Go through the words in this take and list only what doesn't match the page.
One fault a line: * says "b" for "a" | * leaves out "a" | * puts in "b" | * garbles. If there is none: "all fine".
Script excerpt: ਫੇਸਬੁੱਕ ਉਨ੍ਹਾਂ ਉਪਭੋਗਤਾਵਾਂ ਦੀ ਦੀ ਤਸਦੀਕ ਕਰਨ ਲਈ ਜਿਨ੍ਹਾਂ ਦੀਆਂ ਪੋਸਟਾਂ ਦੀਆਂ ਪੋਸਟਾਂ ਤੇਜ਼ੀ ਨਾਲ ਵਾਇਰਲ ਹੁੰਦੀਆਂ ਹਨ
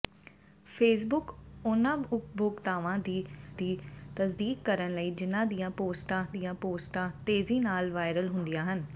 all fine